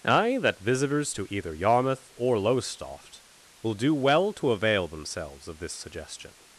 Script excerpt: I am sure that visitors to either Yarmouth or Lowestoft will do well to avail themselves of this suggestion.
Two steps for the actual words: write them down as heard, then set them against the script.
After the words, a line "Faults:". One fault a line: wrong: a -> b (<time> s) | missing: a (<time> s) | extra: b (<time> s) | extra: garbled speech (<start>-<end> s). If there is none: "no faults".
I that visitors to either Yarmouth or Lowestoft will do well to avail themselves of this suggestion.
Faults:
missing: am sure (0.4 s)